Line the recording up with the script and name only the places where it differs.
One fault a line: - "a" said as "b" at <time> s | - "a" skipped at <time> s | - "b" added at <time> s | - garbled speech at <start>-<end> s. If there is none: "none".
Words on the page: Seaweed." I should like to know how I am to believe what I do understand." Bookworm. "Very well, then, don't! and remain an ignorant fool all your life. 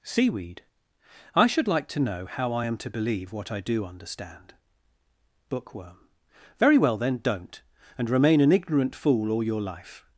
none